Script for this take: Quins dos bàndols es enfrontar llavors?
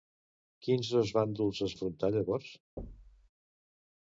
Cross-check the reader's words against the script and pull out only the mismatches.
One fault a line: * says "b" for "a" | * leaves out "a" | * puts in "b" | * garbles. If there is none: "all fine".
all fine